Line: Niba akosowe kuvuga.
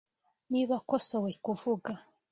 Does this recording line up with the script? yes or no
yes